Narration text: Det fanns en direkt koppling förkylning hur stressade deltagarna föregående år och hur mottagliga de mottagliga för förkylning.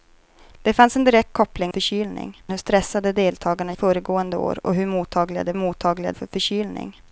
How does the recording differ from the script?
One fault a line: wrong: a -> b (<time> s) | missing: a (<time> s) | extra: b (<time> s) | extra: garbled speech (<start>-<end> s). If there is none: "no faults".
no faults